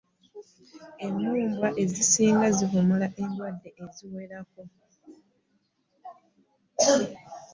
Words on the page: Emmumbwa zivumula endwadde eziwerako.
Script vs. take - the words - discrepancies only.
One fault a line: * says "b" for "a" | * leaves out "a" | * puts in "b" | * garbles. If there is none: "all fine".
* puts in "ezisinga"